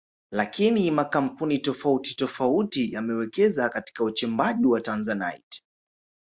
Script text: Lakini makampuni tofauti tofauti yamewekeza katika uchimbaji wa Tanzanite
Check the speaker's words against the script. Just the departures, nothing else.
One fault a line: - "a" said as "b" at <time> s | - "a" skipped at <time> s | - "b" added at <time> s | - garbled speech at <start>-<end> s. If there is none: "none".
none